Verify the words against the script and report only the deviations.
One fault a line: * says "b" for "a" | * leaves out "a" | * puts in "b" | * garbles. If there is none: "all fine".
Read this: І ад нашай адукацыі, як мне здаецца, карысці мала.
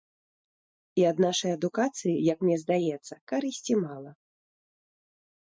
all fine